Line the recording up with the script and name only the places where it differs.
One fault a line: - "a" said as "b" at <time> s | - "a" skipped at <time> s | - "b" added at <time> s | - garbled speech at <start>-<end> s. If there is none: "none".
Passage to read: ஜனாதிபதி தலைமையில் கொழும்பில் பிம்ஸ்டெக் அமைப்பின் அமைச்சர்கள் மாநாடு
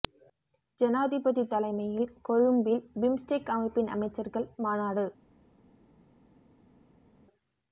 none